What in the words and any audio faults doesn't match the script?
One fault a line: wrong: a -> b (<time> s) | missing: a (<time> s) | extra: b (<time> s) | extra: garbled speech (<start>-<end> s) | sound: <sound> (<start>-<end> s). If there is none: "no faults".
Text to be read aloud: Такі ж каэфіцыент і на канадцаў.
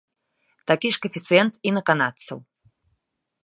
no faults